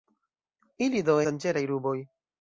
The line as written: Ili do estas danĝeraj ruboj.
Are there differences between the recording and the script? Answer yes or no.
yes